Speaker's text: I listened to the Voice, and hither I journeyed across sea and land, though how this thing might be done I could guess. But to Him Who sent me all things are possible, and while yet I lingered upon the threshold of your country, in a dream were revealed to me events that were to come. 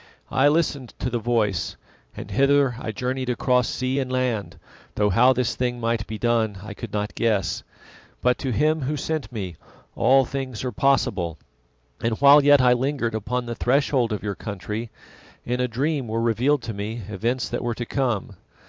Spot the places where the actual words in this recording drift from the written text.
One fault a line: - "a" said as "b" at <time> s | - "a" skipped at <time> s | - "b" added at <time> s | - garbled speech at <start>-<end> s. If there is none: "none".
- "not" added at 6.9 s